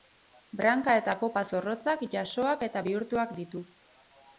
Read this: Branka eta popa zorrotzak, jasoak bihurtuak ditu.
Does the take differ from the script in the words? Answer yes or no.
yes